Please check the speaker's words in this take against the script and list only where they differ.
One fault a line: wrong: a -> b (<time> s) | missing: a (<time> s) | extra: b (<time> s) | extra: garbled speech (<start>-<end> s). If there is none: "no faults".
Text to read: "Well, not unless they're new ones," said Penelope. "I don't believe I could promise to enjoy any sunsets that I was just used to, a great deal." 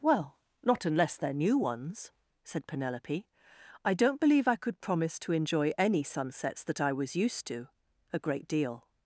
missing: just (7.2 s)